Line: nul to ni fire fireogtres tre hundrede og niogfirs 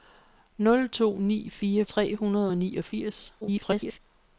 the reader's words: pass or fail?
fail